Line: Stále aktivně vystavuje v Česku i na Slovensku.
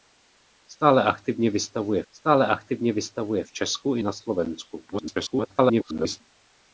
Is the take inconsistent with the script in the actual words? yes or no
yes